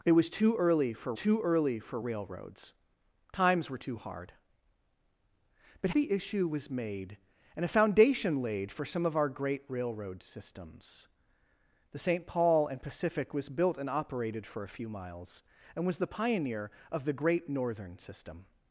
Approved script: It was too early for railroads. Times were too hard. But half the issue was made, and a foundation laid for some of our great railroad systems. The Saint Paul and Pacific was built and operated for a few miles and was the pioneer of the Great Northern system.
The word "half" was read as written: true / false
false